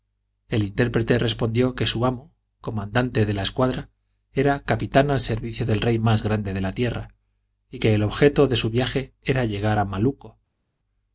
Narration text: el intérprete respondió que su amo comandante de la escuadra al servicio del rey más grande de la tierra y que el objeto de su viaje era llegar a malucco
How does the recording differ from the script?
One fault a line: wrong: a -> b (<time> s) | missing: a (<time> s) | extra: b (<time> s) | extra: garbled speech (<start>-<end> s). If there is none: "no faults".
extra: era capitán (4.3 s)